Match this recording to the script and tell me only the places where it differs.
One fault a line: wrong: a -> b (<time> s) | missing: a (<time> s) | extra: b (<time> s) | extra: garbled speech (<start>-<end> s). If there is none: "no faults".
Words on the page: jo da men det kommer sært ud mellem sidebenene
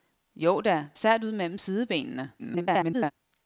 missing: men det kommer (0.9 s)
extra: garbled speech (2.4-3.1 s)